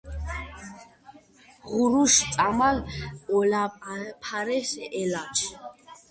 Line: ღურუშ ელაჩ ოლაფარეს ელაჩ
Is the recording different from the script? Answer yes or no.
yes